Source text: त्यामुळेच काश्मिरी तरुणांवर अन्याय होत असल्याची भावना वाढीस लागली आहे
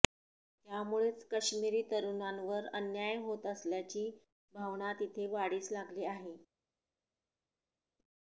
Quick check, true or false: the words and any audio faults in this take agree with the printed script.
false